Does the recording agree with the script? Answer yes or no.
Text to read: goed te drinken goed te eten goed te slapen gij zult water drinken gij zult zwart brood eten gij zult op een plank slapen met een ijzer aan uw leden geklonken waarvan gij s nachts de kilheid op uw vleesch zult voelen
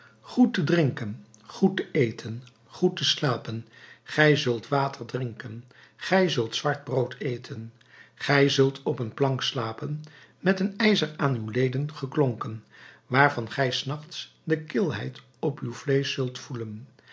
yes